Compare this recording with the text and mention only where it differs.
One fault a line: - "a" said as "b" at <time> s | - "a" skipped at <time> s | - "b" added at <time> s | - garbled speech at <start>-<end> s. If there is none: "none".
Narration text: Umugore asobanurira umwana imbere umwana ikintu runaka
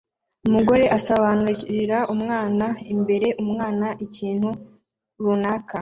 none